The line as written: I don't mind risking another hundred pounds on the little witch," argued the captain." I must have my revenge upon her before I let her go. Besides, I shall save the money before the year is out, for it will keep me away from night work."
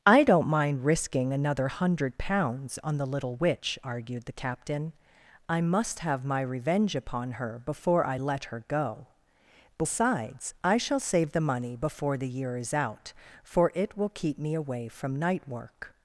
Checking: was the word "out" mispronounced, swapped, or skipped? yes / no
no